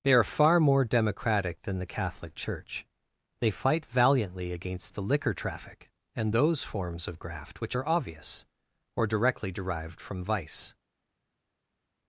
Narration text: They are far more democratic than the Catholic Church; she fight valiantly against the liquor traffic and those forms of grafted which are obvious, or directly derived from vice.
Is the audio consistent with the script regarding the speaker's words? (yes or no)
no